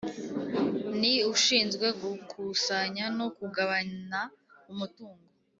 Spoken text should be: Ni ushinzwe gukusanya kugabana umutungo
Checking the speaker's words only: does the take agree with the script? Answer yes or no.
no